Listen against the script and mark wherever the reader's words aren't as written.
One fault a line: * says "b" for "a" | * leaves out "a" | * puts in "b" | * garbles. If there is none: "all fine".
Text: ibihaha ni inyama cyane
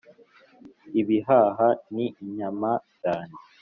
all fine